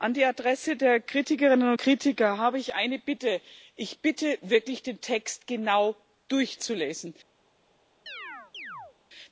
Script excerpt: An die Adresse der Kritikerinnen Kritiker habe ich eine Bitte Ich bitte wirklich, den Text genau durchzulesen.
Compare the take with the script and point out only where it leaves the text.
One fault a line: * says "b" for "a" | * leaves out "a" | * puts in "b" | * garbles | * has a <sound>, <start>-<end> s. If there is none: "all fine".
* has a chirp, 8.1-9.0 s